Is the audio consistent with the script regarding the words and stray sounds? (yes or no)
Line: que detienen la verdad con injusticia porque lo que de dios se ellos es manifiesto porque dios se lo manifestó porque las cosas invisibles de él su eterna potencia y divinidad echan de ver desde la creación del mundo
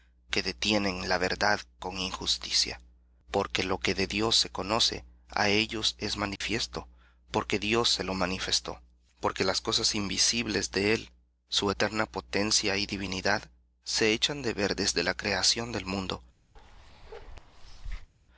no